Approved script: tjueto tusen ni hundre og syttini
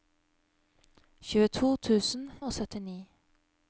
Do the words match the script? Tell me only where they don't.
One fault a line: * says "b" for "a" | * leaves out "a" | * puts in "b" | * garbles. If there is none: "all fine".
* leaves out "ni hundre"